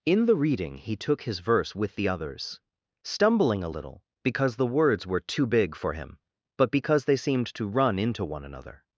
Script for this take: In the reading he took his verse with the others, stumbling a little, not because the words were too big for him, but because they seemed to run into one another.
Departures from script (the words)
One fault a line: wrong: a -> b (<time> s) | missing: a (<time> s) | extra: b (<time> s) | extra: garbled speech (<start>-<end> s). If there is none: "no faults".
missing: not (4.0 s)